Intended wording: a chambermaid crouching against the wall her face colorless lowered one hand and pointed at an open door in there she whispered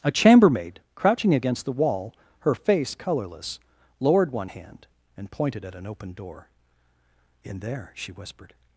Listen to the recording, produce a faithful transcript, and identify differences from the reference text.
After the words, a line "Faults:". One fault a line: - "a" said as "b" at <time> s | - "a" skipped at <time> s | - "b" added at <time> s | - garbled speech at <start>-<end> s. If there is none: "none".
a chambermaid crouching against the wall her face colorless lowered one hand and pointed at an open door in there she whispered
Faults:
none